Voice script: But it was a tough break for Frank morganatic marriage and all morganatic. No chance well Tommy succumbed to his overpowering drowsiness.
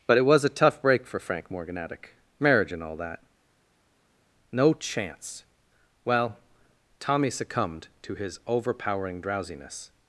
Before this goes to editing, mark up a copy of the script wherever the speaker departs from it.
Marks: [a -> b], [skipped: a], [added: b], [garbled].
But it was a tough break for Frank morganatic marriage and all [morganatic. -> that] No chance well Tommy succumbed to his overpowering drowsiness.